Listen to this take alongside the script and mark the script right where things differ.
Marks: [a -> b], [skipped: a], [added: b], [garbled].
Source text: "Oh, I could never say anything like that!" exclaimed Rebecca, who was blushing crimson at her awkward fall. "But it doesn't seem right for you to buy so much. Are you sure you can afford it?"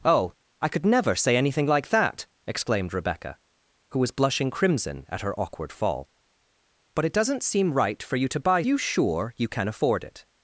"Oh, I could never say anything like that!" exclaimed Rebecca, who was blushing crimson at her awkward fall. "But it doesn't seem right for you to buy [skipped: so much. Are] you sure you can afford it?"